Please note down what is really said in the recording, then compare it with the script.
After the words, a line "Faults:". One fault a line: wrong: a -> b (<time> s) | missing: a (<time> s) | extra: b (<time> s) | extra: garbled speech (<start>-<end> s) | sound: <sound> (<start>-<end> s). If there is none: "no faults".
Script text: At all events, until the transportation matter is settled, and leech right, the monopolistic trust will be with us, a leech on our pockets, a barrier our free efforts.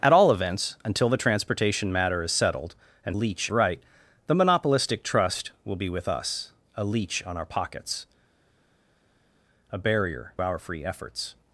At all events, until the transportation matter is settled, and leech right, the monopolistic trust will be with us, a leech on our pockets, a barrier our free efforts.
Faults:
no faults